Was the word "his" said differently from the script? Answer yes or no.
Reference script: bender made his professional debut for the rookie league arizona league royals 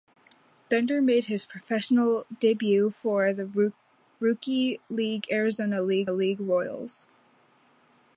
no